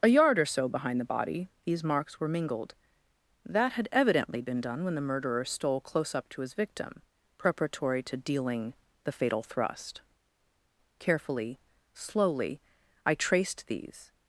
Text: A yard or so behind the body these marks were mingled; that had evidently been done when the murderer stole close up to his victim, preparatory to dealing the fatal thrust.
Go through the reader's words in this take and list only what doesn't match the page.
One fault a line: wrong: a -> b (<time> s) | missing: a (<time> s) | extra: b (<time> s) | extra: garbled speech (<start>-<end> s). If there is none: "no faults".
extra: Carefully slowly I traced these (11.0 s)